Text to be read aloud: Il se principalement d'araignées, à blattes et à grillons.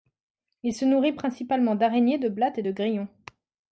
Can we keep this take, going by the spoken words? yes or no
no